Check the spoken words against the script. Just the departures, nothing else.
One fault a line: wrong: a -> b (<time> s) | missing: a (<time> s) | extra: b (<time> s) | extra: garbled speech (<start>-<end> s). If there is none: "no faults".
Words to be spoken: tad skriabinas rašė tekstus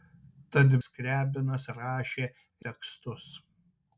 no faults